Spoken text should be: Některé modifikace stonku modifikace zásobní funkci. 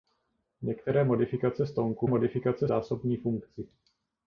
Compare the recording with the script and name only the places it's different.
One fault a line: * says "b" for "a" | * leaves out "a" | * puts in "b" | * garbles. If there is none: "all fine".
all fine